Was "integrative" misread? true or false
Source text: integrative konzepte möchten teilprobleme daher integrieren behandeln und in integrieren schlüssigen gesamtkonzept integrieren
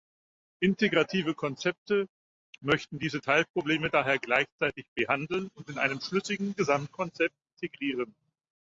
false